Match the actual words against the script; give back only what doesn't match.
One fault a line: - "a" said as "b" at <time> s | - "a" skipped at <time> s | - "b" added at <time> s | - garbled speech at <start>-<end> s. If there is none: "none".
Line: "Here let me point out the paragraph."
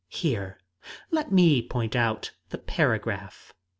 none